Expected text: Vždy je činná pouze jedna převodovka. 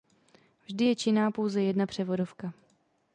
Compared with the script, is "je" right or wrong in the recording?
right